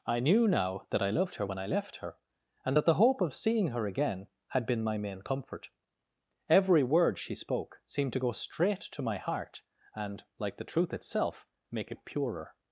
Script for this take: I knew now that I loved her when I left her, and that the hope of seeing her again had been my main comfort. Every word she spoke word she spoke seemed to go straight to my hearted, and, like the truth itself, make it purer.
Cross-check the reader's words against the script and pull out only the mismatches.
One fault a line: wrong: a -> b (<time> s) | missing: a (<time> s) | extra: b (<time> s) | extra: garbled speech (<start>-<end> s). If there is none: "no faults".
missing: word she spoke (7.8 s)
wrong: hearted -> heart (9.2 s)